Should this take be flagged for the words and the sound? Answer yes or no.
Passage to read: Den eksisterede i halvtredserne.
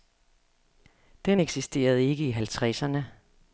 yes